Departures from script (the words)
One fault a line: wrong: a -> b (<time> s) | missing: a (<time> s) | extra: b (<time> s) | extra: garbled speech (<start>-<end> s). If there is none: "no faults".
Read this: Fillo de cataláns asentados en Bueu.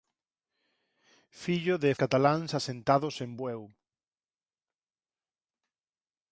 no faults